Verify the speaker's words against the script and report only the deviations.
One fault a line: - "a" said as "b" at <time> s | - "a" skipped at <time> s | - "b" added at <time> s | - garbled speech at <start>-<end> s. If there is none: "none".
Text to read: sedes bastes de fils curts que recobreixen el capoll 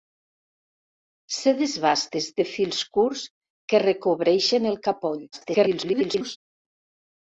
- garbled speech at 5.3-6.4 s